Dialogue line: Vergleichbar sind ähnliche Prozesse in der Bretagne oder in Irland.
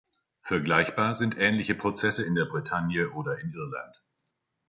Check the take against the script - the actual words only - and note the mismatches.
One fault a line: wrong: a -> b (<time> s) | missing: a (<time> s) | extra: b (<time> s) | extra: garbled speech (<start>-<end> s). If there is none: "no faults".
no faults